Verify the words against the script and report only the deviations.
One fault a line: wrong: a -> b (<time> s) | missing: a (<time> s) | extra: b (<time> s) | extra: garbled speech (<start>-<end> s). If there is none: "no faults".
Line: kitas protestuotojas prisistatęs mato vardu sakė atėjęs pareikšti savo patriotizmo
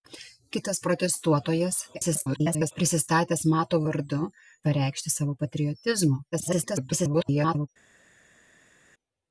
extra: garbled speech (1.9-2.7 s)
missing: sakė atėjęs (4.2 s)
extra: garbled speech (6.3-7.7 s)